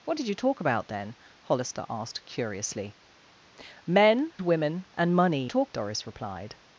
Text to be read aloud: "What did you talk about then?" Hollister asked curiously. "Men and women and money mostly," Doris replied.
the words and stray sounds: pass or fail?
fail